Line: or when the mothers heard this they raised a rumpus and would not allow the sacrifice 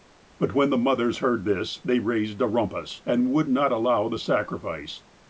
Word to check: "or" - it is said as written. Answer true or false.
false